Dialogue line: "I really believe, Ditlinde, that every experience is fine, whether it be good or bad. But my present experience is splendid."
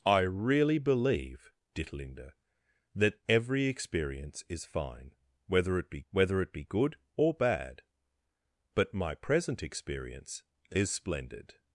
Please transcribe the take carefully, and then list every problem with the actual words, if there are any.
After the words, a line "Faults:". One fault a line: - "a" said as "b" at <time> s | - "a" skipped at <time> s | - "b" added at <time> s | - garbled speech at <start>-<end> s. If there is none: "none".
"I really believe, Ditlinde, that every experience is fine, whether it be whether it be good or bad. But my present experience is splendid."
Faults:
- "whether it be" added at 6.1 s